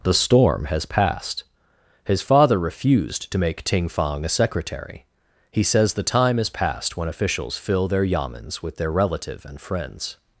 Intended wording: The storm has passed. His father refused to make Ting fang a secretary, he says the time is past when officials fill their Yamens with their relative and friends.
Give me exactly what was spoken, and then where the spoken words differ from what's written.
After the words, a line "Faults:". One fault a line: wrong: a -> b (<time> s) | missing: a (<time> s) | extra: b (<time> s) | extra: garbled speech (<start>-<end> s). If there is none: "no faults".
The storm has passed. His father refused to make Ting fang a secretary, he says the time is past when officials fill their Yamens with their relative and friends.
Faults:
no faults